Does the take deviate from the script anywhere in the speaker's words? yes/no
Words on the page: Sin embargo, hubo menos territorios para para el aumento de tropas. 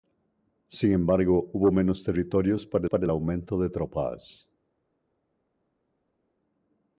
no